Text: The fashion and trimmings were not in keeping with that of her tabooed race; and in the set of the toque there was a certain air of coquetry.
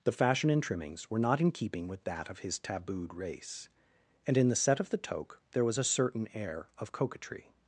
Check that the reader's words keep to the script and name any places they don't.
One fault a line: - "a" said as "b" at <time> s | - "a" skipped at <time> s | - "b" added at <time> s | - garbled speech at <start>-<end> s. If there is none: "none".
- "her" said as "his" at 2.4 s